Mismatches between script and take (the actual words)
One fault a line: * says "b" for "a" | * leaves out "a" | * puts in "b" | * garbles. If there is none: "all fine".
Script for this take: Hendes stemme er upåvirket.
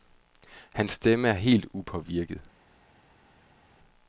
* says "Hans" for "Hendes"
* puts in "helt"